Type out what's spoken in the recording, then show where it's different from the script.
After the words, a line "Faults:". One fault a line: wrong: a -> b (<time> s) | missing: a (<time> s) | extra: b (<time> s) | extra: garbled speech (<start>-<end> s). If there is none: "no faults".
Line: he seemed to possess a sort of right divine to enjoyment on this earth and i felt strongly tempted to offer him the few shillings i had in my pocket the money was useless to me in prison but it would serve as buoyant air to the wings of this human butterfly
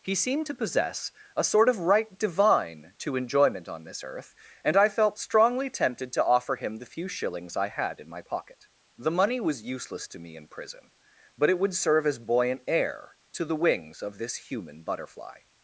he seemed to possess a sort of right divine to enjoyment on this earth and i felt strongly tempted to offer him the few shillings i had in my pocket the money was useless to me in prison but it would serve as buoyant air to the wings of this human butterfly
Faults:
no faults